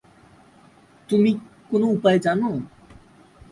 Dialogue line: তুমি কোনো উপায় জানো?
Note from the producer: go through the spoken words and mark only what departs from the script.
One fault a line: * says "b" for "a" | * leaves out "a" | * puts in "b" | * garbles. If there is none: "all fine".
all fine